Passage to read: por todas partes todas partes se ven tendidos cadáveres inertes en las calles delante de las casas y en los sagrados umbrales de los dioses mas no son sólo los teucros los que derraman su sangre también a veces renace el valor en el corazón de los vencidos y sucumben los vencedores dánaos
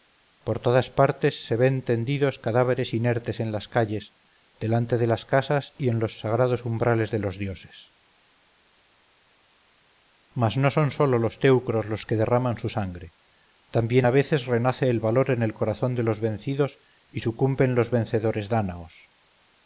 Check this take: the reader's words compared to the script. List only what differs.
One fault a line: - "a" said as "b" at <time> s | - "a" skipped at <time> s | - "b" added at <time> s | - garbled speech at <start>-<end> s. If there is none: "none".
- "todas partes" skipped at 1.4 s